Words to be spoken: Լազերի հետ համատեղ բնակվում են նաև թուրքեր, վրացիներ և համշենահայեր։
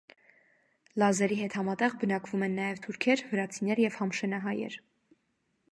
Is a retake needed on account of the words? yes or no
no